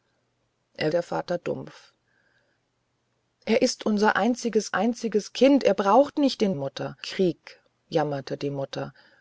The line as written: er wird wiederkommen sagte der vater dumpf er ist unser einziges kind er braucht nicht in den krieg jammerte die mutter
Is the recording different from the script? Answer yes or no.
yes